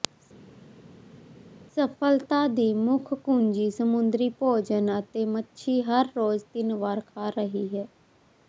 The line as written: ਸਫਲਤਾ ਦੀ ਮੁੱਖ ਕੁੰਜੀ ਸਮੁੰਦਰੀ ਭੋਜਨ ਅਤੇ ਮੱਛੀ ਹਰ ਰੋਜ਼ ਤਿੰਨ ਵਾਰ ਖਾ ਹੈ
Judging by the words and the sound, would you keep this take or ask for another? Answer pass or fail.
fail